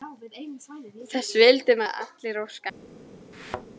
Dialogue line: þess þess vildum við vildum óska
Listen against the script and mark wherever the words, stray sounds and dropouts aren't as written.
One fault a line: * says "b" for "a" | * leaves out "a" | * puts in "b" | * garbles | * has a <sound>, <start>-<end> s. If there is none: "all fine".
* leaves out "þess"
* says "allir" for "vildum"
* has a thud, 3.3-3.7 s